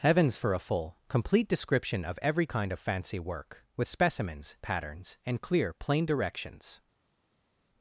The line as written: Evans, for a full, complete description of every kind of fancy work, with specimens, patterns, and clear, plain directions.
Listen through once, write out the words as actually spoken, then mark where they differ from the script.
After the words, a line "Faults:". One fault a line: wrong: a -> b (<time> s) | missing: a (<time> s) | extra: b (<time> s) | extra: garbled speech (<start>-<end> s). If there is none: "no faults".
Heavens, for a full, complete description of every kind of fancy work, with specimens, patterns, and clear, plain directions.
Faults:
wrong: Evans -> Heavens (0.0 s)